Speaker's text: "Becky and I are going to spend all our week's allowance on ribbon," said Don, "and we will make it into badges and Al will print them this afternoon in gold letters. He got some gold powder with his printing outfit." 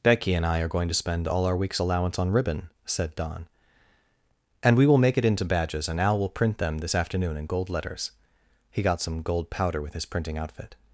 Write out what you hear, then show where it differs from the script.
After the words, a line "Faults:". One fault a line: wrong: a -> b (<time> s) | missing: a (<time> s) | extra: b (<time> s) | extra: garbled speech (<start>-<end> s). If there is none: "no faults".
"Becky and I are going to spend all our week's allowance on ribbon," said Don, "and we will make it into badges and Al will print them this afternoon in gold letters. He got some gold powder with his printing outfit."
Faults:
no faults